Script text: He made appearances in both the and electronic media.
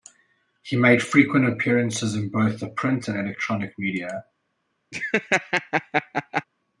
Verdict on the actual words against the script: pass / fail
fail